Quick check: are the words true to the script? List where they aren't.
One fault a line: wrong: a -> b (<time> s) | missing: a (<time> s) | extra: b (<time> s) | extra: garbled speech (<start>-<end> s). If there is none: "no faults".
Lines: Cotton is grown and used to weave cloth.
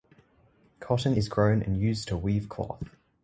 no faults